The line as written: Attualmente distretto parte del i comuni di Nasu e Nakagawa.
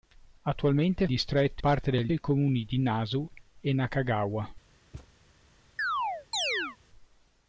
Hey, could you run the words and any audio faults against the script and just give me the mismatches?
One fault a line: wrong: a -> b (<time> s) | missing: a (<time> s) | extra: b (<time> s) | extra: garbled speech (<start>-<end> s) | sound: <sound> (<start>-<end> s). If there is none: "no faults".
sound: thud (4.9-5.1 s)
sound: chirp (5.8-6.8 s)